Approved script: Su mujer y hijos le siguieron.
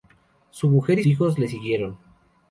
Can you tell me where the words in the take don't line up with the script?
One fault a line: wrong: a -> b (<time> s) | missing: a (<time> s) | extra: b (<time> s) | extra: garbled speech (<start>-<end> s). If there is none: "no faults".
no faults